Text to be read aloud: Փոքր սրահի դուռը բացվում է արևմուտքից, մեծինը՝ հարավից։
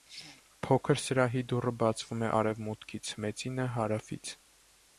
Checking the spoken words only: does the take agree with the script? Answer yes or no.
yes